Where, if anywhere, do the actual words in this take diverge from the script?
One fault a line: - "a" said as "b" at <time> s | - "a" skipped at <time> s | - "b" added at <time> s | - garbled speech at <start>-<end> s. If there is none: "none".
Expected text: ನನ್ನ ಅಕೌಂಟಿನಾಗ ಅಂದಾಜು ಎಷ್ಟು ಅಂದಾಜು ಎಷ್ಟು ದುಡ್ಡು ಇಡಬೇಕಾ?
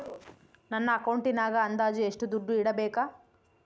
- "ಅಂದಾಜು ಎಷ್ಟು" skipped at 2.3 s